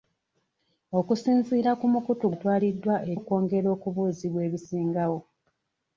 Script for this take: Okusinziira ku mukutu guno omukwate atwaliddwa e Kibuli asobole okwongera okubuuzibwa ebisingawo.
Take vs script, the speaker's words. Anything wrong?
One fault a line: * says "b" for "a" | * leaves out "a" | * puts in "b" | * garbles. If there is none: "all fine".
* leaves out "guno omukwate"
* leaves out "Kibuli asobole"